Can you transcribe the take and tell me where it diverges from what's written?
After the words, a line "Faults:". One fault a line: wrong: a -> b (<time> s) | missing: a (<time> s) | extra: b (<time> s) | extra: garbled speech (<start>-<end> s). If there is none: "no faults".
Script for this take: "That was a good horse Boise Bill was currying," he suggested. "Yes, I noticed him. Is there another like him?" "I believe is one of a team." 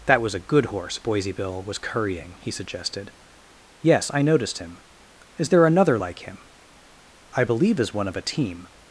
"That was a good horse Boise Bill was currying," he suggested. "Yes, I noticed him. Is there another like him?" "I believe is one of a team."
Faults:
no faults